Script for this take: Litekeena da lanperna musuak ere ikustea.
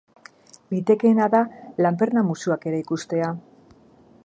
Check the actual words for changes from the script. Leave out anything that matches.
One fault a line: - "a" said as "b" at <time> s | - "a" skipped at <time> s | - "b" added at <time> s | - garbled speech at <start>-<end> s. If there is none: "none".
none